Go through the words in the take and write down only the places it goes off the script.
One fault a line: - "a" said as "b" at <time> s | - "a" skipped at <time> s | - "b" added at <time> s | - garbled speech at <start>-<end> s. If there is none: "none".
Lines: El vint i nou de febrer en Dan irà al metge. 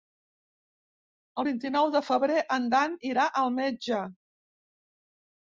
none